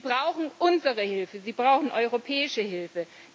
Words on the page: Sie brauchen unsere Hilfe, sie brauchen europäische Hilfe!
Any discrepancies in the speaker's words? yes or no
no